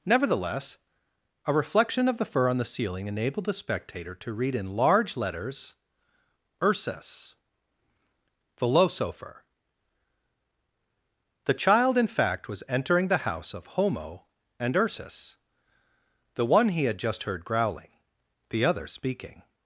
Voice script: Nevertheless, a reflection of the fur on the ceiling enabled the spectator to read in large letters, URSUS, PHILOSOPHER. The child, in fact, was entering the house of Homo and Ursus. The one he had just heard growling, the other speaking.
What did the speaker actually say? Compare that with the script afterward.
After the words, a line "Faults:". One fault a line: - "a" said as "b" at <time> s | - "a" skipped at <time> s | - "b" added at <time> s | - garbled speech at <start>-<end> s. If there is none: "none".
Nevertheless, a reflection of the fur on the ceiling enabled the spectator to read in large letters, URSUS, PHILOSOPHER. The child, in fact, was entering the house of Homo and Ursus. The one he had just heard growling, the other speaking.
Faults:
none